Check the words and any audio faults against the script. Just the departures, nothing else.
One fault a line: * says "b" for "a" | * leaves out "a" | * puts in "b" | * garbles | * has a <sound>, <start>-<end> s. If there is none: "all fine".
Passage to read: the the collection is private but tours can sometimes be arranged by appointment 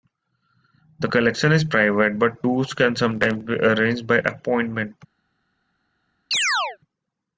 * leaves out "the"
* has a chirp, 6.3-6.8 s